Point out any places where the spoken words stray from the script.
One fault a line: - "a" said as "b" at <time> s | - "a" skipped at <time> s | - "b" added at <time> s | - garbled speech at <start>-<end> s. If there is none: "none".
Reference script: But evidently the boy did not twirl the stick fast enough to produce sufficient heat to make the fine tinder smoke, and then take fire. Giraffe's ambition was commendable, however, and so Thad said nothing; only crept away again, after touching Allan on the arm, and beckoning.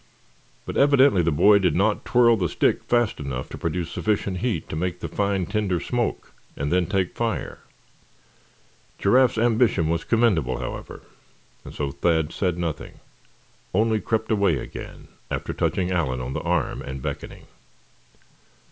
none